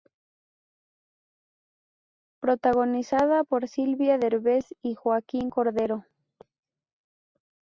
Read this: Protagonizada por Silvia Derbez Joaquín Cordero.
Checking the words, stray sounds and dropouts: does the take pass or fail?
fail